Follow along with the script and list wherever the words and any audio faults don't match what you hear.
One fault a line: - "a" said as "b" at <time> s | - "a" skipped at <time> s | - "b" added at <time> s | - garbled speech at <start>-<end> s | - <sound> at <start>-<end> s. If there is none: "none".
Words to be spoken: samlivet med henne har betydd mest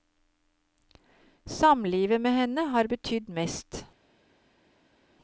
none